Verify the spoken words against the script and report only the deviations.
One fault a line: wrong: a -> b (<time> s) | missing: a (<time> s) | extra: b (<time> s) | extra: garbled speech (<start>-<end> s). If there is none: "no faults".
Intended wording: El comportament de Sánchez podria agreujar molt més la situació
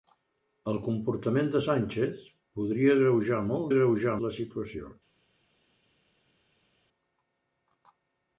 wrong: més -> agreujar (3.7 s)